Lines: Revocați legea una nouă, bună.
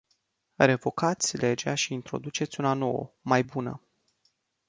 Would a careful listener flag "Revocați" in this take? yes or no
no